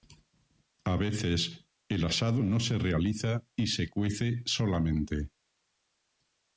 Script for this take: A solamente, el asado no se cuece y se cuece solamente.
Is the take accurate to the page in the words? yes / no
no